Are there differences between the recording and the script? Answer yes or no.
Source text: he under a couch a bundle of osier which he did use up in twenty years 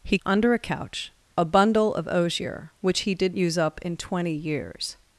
no